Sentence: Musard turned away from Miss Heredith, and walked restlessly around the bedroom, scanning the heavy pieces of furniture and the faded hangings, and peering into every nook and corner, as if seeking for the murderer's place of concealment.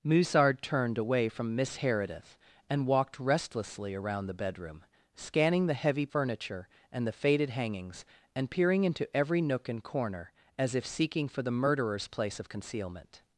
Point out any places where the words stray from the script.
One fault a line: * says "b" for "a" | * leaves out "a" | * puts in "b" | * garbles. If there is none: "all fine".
* leaves out "pieces of"